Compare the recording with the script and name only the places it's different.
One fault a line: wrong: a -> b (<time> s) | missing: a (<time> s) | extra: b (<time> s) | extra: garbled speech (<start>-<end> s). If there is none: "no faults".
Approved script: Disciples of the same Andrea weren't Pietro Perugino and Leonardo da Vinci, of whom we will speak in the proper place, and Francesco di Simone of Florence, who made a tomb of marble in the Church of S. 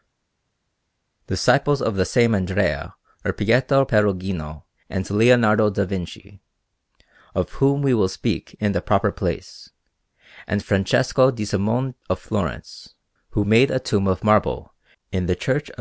wrong: weren't -> were (3.2 s)